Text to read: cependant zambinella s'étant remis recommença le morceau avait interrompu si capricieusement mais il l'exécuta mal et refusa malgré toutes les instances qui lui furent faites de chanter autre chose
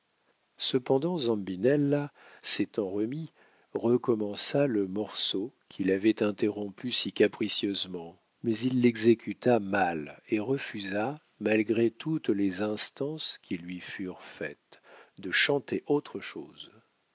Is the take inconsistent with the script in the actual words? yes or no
yes